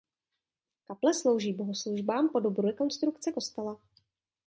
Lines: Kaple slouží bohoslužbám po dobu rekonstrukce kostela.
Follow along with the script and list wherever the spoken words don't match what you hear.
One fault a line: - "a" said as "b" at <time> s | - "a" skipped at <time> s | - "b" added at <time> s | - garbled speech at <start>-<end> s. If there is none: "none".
none